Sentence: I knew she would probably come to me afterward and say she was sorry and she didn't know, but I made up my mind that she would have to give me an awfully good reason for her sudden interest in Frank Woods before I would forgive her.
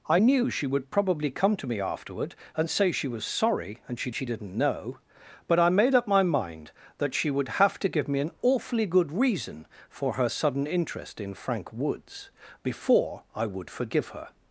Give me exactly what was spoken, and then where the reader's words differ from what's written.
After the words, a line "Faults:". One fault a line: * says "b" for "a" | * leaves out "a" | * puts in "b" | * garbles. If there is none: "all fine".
I knew she would probably come to me afterward and say she was sorry and she she didn't know, but I made up my mind that she would have to give me an awfully good reason for her sudden interest in Frank Woods before I would forgive her.
Faults:
* puts in "she"